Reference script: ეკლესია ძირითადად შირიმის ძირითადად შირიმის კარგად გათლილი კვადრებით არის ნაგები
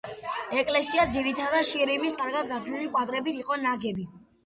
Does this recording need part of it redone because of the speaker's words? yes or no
yes